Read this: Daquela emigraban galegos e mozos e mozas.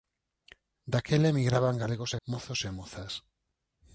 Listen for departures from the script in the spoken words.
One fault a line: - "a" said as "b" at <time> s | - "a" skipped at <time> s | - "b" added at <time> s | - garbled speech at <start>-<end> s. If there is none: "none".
none